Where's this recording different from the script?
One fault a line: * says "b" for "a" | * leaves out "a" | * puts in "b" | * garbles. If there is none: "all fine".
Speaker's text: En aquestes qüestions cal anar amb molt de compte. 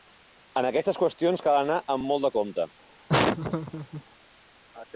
all fine